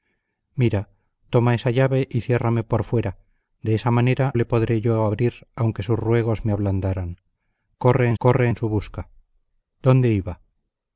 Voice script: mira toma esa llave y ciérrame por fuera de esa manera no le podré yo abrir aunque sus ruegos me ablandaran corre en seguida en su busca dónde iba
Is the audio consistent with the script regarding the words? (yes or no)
no